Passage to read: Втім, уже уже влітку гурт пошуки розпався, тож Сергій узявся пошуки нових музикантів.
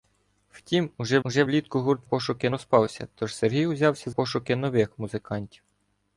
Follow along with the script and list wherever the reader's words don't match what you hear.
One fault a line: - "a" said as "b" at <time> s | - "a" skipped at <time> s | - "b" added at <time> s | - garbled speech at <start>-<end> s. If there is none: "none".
none